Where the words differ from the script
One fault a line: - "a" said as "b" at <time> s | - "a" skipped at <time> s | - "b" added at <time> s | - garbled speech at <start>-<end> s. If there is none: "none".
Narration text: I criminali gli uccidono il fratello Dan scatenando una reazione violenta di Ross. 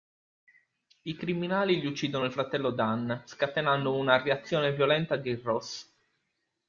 none